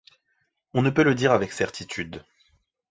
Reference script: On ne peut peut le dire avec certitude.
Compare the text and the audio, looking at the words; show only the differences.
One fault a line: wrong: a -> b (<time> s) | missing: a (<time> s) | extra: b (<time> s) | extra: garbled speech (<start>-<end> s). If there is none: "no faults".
missing: peut (1.0 s)